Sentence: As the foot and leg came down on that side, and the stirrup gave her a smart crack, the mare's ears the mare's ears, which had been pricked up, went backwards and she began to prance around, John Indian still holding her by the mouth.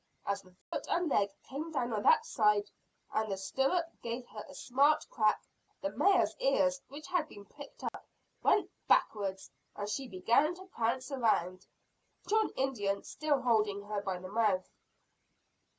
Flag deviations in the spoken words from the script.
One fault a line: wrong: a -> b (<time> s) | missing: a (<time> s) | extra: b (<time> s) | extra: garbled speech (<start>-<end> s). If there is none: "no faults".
missing: the mare's ears (6.8 s)